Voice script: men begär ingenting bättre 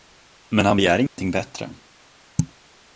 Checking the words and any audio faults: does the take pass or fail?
fail